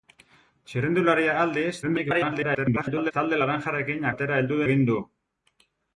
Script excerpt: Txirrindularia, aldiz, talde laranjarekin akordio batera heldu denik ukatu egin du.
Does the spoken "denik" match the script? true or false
false